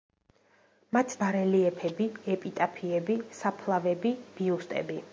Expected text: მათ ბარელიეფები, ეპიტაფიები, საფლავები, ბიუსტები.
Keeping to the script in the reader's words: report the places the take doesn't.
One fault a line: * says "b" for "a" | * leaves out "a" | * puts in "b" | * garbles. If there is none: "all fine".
all fine